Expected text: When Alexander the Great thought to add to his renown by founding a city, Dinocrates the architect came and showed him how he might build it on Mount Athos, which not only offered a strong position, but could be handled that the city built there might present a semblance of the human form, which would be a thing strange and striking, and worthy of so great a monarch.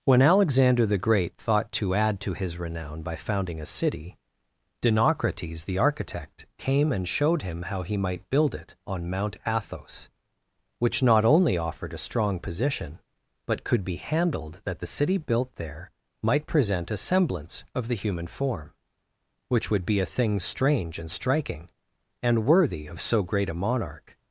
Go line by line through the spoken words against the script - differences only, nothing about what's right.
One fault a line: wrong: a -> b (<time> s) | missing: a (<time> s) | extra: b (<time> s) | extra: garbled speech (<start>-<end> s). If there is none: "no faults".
no faults